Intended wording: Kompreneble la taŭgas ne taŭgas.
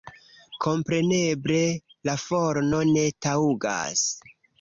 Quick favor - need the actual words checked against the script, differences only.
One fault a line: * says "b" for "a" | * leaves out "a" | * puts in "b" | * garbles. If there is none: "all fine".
* says "forno" for "taŭgas"